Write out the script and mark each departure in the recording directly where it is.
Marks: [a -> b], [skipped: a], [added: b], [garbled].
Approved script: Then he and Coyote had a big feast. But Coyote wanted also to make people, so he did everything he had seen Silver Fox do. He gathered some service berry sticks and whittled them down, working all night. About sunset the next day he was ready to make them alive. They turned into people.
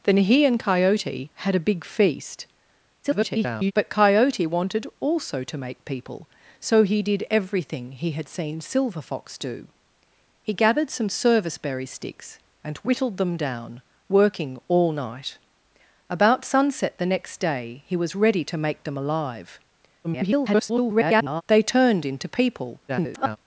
Then he and Coyote had a big feast. [garbled] But Coyote wanted also to make people, so he did everything he had seen Silver Fox do. He gathered some service berry sticks and whittled them down, working all night. About sunset the next day he was ready to make them alive. [garbled] They turned into people. [garbled]